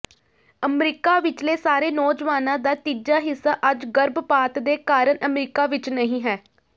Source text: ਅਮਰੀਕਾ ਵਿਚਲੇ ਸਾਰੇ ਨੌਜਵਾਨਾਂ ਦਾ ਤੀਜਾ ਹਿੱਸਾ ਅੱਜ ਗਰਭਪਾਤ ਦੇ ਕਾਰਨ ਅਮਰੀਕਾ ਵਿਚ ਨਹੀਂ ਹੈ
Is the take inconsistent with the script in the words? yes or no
no